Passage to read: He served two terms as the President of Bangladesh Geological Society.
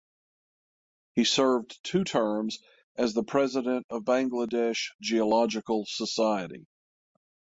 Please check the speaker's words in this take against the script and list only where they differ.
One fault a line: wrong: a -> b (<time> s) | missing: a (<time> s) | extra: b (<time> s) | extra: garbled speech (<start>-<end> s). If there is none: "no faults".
no faults